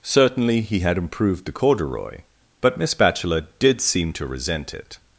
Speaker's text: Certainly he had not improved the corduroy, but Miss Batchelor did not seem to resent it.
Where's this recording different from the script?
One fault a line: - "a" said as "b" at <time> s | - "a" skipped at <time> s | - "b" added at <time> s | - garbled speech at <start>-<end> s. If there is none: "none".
- "not" skipped at 1.0 s
- "not" skipped at 3.8 s